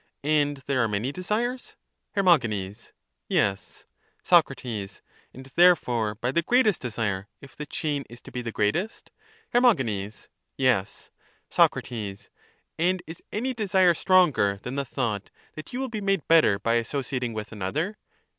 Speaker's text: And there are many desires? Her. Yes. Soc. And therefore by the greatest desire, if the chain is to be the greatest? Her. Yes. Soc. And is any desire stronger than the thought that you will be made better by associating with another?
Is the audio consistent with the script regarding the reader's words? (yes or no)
yes